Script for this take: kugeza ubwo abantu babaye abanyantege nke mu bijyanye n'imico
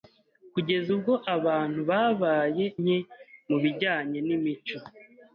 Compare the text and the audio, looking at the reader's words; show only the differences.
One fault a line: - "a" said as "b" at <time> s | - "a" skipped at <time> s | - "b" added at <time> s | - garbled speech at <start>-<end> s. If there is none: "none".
- "abanyantege" skipped at 2.7 s